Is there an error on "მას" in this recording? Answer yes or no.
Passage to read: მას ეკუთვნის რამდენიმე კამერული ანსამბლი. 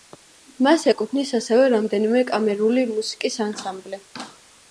no